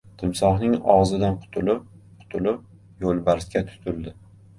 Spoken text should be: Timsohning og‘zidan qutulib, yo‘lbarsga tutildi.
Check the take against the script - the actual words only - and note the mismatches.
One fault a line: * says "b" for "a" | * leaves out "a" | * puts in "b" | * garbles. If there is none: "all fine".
* puts in "qutulib"